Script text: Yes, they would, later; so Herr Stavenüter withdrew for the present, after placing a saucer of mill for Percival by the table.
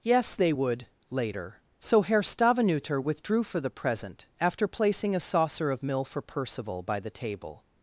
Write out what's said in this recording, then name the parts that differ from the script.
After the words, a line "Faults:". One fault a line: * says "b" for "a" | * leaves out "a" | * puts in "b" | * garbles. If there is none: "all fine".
Yes, they would, later; so Herr Stavenüter withdrew for the present, after placing a saucer of mill for Percival by the table.
Faults:
all fine